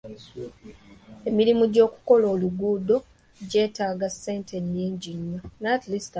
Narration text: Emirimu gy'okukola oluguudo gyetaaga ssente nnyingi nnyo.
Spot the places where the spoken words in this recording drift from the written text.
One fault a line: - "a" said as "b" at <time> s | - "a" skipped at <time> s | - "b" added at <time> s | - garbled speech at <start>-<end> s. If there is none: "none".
none